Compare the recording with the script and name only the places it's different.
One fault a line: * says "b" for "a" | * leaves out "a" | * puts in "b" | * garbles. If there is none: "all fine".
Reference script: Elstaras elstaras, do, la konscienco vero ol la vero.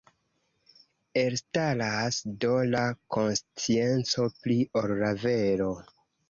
* leaves out "elstaras"
* says "pli" for "vero"